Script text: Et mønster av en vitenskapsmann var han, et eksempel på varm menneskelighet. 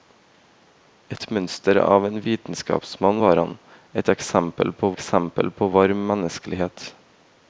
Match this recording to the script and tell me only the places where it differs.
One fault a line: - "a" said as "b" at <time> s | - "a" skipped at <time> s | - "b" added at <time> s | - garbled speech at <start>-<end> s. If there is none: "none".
- "eksempel på" added at 4.9 s